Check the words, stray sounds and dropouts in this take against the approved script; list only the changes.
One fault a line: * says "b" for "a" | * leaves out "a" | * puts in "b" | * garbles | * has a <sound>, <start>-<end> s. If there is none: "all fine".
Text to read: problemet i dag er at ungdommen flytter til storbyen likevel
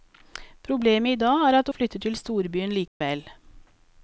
* leaves out "ungdommen"
* has a dropout, 2.9-3.0 s